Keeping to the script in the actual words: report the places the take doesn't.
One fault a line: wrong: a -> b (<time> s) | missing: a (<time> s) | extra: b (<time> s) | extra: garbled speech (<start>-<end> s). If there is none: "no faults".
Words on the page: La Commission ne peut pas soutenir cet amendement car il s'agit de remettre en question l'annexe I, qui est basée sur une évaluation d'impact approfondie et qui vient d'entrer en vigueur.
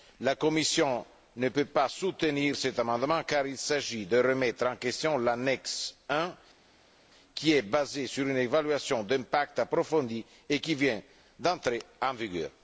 no faults